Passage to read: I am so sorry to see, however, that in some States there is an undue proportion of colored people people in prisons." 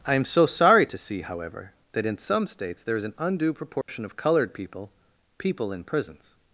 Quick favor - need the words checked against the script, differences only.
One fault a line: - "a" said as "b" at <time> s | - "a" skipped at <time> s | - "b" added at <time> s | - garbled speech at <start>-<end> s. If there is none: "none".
none